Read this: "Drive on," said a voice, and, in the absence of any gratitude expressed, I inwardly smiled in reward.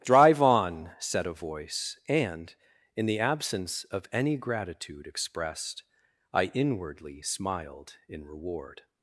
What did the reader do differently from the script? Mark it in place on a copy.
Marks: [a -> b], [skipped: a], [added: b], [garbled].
"Drive on," said a voice, and, in the absence of any gratitude expressed, I inwardly smiled in reward.